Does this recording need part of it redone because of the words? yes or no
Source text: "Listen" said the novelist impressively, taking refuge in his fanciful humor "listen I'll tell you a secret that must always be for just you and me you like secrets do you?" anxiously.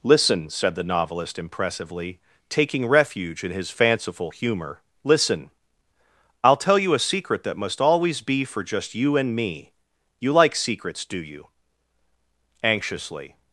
no